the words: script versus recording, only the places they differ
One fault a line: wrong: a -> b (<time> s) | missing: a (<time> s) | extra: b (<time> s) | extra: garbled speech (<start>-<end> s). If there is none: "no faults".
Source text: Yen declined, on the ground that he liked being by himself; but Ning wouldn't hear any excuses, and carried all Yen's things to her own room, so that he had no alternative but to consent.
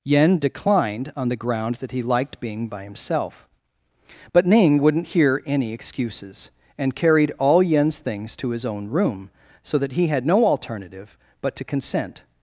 wrong: her -> his (8.5 s)